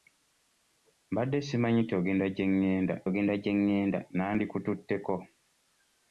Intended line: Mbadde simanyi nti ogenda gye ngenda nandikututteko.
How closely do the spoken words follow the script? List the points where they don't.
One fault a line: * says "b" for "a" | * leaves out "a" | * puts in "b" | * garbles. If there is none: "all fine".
* puts in "ogenda gye ngenda"